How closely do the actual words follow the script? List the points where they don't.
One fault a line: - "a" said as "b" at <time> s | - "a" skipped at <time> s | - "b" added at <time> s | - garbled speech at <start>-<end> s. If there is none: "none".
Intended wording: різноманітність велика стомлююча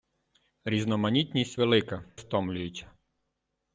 none